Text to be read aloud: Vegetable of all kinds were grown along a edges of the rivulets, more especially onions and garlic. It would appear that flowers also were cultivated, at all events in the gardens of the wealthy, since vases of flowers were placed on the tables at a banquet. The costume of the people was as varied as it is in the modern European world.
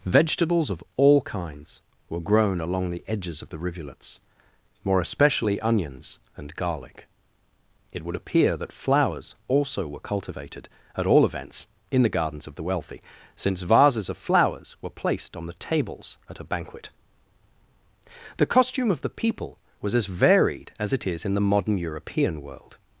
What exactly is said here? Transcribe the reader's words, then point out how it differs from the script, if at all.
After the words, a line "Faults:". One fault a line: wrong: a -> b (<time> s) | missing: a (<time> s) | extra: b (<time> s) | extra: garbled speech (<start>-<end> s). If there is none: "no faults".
Vegetables of all kinds were grown along the edges of the rivulets, more especially onions and garlic. It would appear that flowers also were cultivated, at all events in the gardens of the wealthy, since vases of flowers were placed on the tables at a banquet. The costume of the people was as varied as it is in the modern European world.
Faults:
wrong: Vegetable -> Vegetables (0.1 s)
wrong: a -> the (2.9 s)